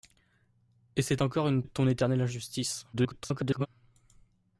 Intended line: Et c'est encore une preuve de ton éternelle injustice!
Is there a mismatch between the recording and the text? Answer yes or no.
yes